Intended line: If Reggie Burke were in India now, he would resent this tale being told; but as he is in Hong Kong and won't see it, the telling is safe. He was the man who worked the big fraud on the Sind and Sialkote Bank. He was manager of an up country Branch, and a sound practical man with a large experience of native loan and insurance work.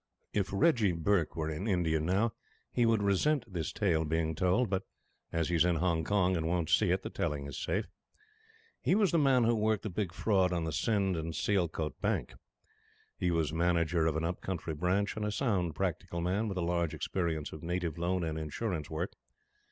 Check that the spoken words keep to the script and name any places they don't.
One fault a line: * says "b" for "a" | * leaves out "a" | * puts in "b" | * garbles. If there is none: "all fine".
all fine